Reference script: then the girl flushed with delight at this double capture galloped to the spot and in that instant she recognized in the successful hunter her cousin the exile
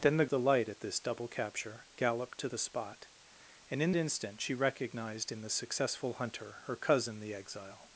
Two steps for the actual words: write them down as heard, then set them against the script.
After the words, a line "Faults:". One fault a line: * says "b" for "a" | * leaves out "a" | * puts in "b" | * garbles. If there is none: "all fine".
then the delight at this double capture galloped to the spot and in instant she recognized in the successful hunter her cousin the exile
Faults:
* leaves out "girl flushed with"
* leaves out "that"